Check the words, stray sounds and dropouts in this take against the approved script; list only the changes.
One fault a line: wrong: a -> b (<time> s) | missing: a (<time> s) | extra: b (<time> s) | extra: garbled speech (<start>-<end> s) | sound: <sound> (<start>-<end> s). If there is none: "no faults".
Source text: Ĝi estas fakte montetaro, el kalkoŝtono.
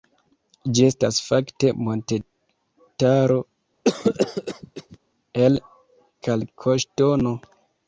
sound: cough (3.8-5.0 s)